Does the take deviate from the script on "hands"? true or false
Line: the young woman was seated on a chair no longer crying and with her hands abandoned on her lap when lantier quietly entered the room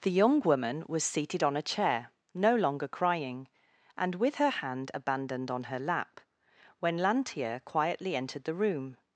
true